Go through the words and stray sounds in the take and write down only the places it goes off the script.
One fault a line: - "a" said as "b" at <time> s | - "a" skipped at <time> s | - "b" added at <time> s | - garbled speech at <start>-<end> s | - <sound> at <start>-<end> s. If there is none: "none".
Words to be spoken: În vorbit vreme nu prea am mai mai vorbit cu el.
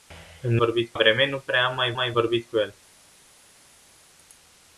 none